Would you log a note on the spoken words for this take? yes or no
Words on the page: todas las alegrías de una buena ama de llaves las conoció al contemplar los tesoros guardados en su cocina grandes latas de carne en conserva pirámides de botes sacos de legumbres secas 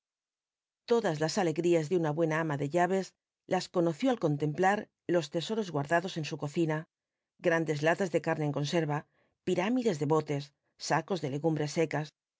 no